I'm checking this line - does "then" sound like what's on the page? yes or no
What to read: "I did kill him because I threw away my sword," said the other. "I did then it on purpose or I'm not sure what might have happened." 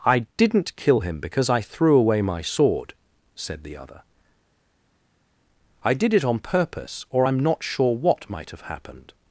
no